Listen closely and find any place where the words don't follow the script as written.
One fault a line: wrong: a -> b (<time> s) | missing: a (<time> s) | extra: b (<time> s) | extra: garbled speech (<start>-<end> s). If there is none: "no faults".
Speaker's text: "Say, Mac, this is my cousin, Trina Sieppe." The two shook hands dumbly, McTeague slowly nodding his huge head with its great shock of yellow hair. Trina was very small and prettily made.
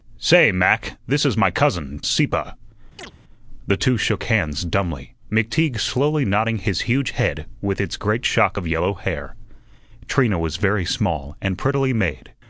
missing: Trina (2.0 s)